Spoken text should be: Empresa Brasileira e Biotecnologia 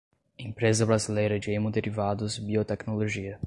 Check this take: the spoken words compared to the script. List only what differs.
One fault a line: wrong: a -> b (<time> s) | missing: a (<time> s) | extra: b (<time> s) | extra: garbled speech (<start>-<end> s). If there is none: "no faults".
extra: de Hemoderivados (1.4 s)